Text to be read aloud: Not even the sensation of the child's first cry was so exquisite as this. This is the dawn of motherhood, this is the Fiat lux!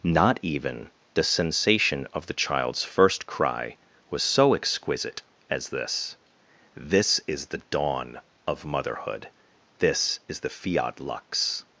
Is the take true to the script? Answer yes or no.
yes